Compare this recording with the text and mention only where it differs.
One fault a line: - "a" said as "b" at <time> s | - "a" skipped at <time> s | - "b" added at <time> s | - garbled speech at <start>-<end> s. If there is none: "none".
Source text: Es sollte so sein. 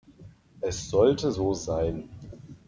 none